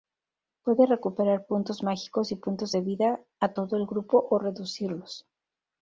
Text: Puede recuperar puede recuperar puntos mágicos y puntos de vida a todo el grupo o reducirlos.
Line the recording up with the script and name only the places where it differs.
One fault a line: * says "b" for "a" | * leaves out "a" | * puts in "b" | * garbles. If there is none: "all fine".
* leaves out "puede recuperar"